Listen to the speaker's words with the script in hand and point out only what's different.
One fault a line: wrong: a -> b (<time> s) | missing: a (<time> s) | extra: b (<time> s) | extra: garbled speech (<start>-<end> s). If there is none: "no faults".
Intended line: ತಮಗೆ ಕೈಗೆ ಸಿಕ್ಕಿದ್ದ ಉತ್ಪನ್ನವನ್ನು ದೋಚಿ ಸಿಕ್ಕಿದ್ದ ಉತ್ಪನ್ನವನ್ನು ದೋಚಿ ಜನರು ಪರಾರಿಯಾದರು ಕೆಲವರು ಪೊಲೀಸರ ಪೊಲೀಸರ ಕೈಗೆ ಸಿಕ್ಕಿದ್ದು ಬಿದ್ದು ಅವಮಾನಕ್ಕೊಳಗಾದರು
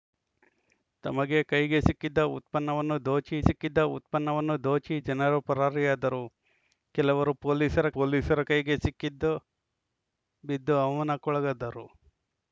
no faults